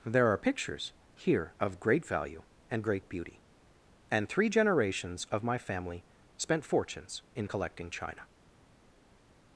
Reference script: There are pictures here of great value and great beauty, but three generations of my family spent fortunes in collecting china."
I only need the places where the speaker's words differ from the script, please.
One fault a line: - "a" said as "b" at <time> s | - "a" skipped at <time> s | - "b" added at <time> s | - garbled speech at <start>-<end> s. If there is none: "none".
- "but" said as "and" at 4.1 s